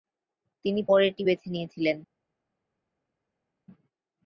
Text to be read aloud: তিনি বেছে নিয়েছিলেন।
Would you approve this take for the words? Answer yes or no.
no